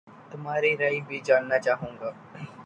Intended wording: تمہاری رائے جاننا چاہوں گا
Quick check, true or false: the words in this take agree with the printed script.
false